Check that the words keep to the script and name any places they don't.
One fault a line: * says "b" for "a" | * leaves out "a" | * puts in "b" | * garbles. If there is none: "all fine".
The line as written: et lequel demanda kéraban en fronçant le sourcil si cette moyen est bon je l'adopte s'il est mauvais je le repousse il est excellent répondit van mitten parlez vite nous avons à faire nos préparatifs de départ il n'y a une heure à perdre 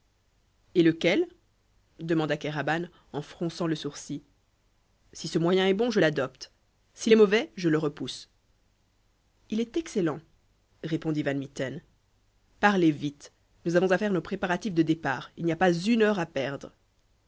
* says "ce" for "cette"
* puts in "pas"